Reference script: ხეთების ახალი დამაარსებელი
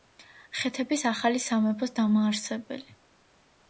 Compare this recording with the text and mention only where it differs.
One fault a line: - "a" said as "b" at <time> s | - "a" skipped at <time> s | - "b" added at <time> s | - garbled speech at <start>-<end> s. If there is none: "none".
- "სამეფოს" added at 1.4 s